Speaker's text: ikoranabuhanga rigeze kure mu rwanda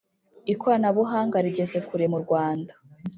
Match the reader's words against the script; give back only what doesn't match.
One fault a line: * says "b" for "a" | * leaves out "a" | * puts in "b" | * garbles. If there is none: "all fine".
all fine